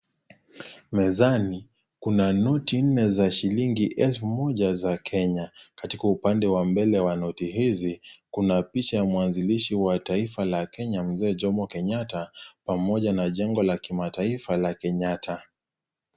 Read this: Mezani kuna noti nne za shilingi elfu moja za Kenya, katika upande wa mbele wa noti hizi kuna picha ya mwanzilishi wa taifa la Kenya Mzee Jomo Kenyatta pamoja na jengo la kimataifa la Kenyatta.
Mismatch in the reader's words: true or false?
false